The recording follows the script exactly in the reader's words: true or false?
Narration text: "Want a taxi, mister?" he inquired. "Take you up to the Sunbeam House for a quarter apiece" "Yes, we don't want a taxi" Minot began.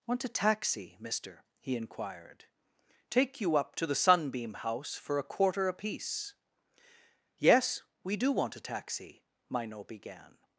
false